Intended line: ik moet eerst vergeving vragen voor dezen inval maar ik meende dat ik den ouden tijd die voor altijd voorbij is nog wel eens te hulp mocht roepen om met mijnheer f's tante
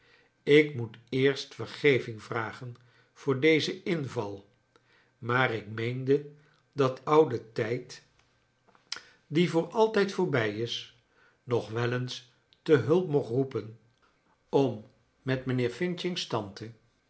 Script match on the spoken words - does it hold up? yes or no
no